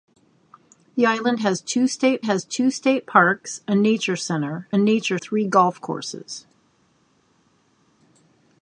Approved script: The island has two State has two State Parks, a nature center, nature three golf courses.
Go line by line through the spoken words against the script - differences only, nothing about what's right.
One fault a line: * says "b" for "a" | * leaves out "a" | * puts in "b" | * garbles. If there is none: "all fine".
all fine